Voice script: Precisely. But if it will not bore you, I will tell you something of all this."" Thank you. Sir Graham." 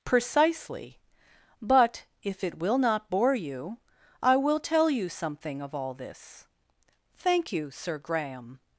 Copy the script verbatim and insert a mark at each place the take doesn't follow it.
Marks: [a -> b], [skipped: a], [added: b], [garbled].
Precisely. But if it will not bore you, I will tell you something of all this."" Thank you. Sir Graham."